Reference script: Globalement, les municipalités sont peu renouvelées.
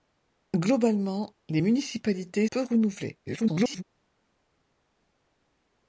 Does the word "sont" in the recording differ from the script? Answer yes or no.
yes